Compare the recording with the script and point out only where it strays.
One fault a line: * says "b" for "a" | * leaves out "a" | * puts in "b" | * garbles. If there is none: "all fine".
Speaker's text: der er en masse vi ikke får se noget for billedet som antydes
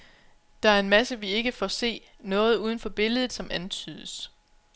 * puts in "uden"